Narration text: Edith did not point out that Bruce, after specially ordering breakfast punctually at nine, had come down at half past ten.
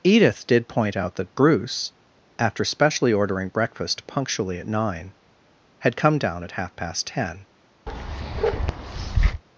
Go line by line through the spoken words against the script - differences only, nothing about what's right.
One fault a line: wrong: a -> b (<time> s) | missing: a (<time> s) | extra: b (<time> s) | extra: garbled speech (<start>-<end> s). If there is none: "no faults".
missing: not (0.7 s)